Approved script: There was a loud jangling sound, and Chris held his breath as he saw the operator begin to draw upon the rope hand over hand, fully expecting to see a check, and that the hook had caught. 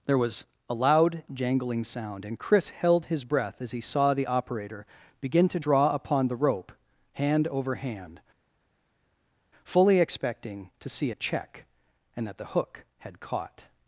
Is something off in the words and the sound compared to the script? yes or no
no